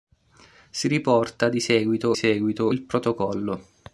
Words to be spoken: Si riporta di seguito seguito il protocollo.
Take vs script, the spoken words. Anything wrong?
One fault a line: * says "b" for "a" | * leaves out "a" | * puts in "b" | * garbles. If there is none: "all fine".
all fine